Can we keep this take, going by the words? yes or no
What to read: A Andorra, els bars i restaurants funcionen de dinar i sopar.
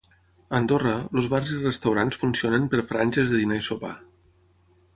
no